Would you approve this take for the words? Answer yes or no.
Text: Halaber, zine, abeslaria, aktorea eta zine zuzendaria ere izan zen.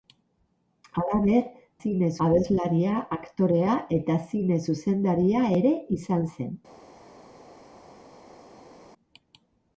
yes